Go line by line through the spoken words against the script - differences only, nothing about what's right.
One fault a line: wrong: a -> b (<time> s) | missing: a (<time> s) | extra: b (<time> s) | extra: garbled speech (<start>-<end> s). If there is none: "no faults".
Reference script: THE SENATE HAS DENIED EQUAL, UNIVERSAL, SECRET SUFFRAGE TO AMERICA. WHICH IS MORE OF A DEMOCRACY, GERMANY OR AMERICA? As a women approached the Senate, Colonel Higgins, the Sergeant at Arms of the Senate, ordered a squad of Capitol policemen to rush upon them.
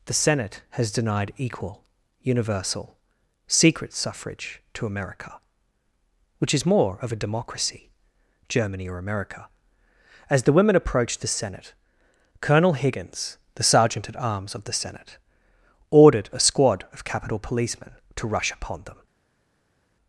wrong: a -> the (10.4 s)